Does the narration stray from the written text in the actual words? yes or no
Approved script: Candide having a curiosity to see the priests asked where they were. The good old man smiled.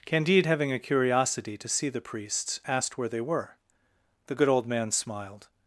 no